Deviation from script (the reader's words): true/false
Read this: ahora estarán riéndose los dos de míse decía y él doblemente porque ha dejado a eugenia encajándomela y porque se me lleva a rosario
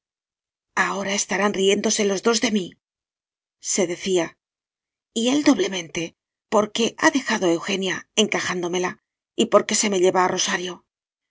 false